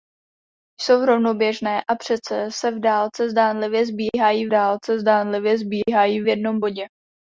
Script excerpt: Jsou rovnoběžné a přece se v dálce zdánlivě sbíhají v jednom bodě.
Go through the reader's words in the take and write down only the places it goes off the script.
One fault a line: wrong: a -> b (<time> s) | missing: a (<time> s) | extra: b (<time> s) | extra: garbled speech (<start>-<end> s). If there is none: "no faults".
extra: dálce zdánlivě sbíhají (4.5 s)